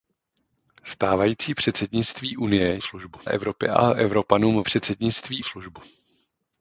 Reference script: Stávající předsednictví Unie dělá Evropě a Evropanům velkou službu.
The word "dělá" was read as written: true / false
false